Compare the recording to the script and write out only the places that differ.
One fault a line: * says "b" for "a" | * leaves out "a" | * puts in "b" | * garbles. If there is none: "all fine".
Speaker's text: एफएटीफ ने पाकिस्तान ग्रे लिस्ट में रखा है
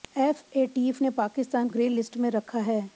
all fine